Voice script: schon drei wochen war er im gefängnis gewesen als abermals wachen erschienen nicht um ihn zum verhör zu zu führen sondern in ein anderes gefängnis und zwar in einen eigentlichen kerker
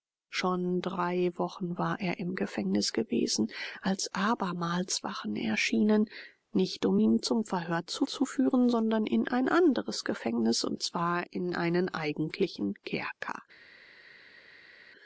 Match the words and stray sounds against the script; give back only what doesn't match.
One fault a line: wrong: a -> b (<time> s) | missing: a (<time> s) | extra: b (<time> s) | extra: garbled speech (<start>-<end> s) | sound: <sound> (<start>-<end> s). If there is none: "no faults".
no faults